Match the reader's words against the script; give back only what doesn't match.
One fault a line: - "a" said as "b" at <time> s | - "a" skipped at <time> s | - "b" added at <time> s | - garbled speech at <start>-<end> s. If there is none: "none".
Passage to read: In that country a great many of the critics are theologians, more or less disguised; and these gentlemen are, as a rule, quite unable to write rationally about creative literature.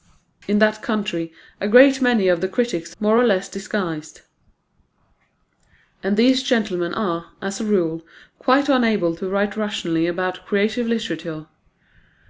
- "are theologians" skipped at 3.0 s